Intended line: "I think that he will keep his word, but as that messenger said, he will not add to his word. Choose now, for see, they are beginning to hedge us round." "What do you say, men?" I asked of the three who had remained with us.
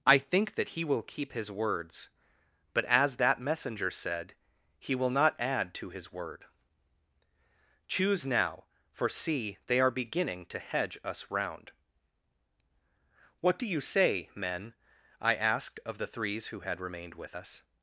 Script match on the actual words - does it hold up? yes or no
no